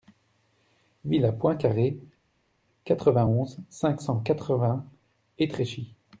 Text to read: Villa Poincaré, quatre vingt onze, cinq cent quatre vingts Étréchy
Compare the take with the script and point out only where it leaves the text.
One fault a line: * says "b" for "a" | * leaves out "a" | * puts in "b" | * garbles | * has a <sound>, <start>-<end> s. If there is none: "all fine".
all fine